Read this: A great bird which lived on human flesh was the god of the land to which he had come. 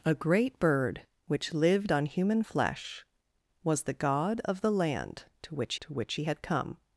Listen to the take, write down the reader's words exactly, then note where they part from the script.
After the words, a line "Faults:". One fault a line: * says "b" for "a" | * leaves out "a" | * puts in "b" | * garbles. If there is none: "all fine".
A great bird which lived on human flesh was the god of the land to which to which he had come.
Faults:
* puts in "to which"